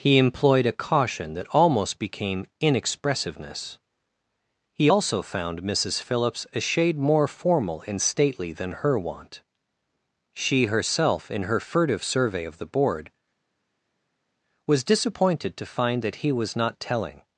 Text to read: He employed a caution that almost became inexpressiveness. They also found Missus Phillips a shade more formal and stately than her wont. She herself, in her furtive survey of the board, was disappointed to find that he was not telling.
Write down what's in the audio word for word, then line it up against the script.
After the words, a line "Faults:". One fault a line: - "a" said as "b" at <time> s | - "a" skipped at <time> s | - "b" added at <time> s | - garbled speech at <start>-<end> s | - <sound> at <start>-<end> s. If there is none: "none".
He employed a caution that almost became inexpressiveness. He also found Missus Phillips a shade more formal and stately than her wont. She herself, in her furtive survey of the board, was disappointed to find that he was not telling.
Faults:
- "They" said as "He" at 4.7 s